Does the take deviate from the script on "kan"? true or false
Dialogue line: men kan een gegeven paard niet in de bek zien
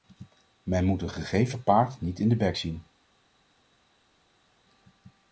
true